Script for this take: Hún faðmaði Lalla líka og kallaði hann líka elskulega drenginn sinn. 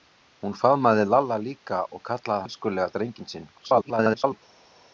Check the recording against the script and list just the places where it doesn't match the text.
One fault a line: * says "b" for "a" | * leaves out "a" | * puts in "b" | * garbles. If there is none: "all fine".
* leaves out "hann líka"
* garbles